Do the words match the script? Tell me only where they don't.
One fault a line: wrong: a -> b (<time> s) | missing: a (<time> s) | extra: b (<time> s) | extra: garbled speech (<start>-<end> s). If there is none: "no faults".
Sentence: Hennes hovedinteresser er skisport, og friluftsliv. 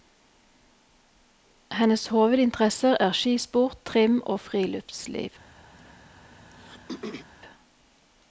extra: trim (3.9 s)